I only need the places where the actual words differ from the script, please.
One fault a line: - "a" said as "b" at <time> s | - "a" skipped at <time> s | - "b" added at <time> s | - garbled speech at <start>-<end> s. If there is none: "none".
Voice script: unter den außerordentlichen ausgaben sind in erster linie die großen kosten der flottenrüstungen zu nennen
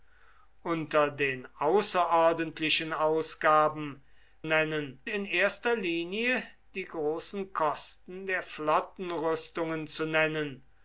- "sind" said as "nennen" at 4.4 s